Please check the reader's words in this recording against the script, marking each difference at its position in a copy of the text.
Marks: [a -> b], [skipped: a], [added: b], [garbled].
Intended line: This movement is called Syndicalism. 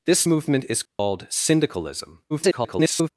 This movement is called Syndicalism. [garbled]